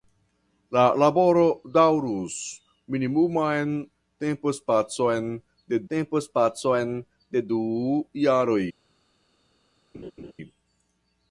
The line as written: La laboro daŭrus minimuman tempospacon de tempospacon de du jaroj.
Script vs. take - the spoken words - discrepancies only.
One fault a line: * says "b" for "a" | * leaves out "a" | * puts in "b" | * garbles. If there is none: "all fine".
all fine